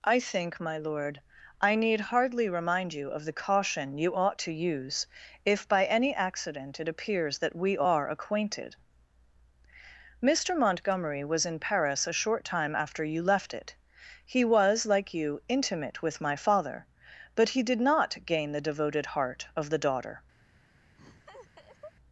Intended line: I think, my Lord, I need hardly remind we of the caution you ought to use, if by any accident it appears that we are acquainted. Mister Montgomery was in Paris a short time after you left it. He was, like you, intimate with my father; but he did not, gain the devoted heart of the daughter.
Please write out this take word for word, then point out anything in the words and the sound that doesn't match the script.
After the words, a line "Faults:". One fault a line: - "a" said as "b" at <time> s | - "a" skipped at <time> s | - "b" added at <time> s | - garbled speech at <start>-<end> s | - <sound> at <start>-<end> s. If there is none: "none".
I think, my Lord, I need hardly remind you of the caution you ought to use, if by any accident it appears that we are acquainted. Mister Montgomery was in Paris a short time after you left it. He was, like you, intimate with my father; but he did not, gain the devoted heart of the daughter.
Faults:
- "we" said as "you" at 2.9 s
- laugh at 21.0-21.9 s